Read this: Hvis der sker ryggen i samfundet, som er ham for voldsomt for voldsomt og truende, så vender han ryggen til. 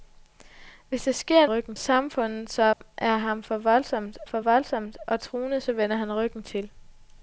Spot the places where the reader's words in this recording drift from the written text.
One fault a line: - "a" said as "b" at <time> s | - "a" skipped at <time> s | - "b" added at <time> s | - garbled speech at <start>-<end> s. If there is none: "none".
none